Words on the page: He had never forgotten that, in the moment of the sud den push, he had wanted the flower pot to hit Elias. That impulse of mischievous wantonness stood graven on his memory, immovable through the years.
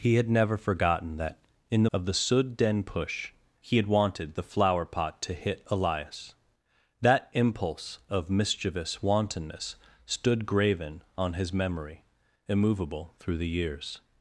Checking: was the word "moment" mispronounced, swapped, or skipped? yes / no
yes